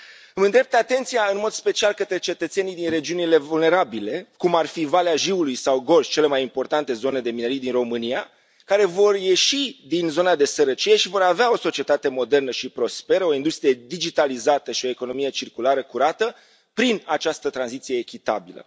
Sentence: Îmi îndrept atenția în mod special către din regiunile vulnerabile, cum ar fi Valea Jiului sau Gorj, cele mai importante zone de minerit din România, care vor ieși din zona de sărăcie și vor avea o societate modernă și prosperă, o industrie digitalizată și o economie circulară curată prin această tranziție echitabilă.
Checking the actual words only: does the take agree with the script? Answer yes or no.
no